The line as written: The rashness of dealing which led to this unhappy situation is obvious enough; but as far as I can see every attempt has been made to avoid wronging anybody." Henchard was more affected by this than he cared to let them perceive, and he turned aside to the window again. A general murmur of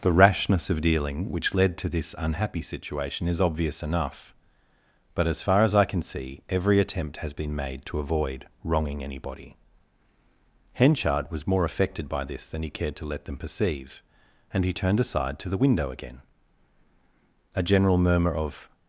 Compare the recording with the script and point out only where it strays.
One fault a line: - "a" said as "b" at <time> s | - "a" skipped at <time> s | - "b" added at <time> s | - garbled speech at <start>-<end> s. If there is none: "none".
none